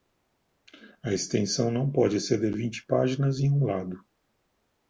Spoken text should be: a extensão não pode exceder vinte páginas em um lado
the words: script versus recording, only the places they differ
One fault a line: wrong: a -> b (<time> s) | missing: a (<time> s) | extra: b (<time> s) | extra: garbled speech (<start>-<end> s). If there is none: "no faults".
no faults